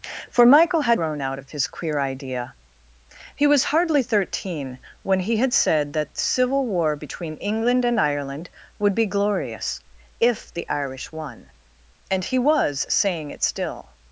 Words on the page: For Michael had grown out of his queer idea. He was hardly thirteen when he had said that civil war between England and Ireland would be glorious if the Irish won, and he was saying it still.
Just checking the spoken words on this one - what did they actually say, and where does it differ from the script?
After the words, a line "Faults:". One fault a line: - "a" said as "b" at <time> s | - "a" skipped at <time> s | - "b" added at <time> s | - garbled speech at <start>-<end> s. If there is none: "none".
For Michael had grown out of his queer idea. He was hardly thirteen when he had said that civil war between England and Ireland would be glorious if the Irish won, and he was saying it still.
Faults:
none